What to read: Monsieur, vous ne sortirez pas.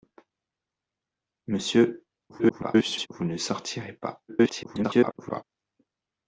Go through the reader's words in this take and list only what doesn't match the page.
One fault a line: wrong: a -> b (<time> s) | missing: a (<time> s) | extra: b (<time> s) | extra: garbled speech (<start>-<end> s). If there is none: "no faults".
extra: garbled speech (2.3-3.1 s)
extra: garbled speech (4.3-5.4 s)